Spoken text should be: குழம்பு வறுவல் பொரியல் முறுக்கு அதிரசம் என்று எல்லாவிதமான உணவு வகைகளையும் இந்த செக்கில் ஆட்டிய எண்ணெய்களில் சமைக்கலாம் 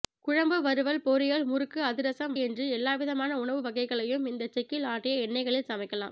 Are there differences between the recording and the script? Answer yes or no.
no